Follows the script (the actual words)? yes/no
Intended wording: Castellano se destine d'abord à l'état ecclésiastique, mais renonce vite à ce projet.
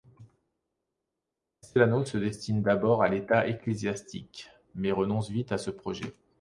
yes